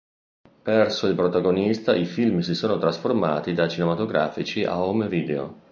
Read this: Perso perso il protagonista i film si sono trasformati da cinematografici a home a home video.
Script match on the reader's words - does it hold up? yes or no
no